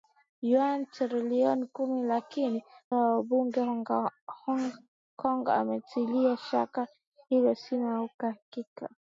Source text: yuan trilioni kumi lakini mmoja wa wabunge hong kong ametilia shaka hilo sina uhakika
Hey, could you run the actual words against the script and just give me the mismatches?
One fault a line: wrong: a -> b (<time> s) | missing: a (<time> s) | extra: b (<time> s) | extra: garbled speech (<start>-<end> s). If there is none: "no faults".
missing: mmoja (2.6 s)